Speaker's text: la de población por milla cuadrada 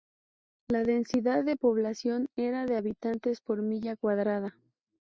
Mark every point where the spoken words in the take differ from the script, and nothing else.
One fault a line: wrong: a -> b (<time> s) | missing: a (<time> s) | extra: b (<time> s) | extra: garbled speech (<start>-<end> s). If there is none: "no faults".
extra: densidad (0.8 s)
extra: era de habitantes (2.4 s)